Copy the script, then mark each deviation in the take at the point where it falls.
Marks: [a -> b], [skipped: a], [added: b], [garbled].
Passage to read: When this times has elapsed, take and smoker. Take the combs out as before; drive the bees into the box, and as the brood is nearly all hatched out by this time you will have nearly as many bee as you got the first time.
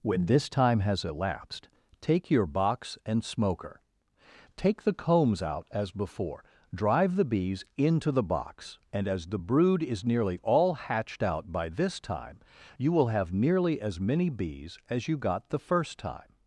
When this [times -> time] has elapsed, take [added: your box] and smoker. Take the combs out as before; drive the bees into the box, and as the brood is nearly all hatched out by this time you will have nearly as many [bee -> bees] as you got the first time.